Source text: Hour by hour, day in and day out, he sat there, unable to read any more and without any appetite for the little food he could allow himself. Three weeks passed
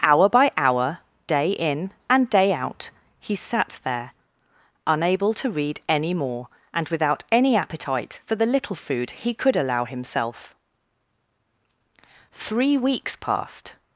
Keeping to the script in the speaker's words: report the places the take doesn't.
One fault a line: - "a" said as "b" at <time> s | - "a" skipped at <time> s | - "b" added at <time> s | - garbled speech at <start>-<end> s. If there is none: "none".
none